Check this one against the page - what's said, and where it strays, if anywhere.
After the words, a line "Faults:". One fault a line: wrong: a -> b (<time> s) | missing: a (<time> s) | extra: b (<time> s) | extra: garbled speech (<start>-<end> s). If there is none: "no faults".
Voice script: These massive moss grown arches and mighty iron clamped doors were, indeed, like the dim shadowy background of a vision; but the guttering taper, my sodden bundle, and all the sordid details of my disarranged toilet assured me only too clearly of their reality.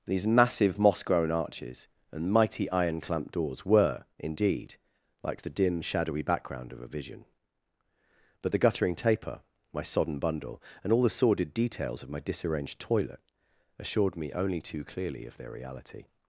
These massive moss grown arches and mighty iron clamped doors were, indeed, like the dim shadowy background of a vision; but the guttering taper, my sodden bundle, and all the sordid details of my disarranged toilet assured me only too clearly of their reality.
Faults:
no faults